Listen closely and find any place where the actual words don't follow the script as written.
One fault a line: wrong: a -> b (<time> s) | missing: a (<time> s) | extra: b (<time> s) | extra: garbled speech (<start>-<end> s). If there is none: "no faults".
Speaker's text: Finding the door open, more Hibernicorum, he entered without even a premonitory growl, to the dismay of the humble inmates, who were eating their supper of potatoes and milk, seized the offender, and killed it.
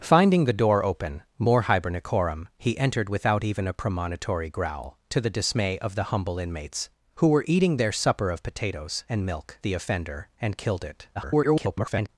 missing: seized (9.6 s)
extra: garbled speech (11.1-12.1 s)